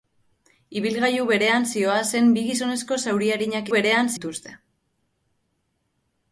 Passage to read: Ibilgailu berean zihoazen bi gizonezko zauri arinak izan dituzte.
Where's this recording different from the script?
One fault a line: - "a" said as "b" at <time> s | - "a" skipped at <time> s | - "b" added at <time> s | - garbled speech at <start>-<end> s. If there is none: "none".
- "izan" said as "berean" at 3.7 s